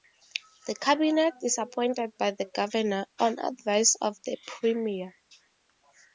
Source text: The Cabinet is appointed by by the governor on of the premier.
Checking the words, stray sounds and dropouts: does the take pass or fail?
fail